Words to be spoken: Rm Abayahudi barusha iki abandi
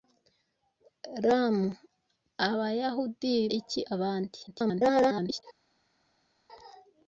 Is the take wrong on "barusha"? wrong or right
wrong